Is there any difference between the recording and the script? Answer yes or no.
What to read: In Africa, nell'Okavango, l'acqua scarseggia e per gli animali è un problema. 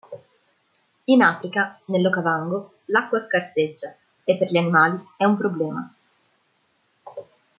no